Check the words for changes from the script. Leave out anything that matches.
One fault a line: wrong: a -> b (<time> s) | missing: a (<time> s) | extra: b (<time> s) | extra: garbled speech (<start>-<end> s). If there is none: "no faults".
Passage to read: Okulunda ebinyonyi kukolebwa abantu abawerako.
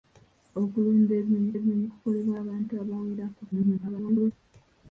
extra: ebinyonyi (1.6 s)
extra: garbled speech (3.5-4.3 s)